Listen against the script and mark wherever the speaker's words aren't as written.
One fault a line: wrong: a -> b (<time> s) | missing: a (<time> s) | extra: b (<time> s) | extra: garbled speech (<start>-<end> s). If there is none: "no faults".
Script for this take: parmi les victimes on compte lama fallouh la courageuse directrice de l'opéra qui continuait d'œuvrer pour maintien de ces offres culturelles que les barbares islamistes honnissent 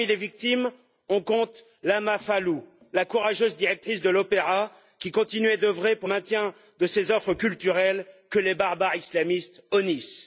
no faults